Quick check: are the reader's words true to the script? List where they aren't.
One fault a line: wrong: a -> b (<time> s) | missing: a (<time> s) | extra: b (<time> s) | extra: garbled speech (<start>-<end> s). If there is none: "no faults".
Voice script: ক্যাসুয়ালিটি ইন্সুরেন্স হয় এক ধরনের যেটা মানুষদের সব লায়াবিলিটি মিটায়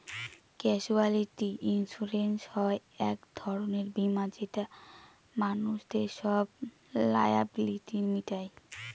extra: বীমা (3.9 s)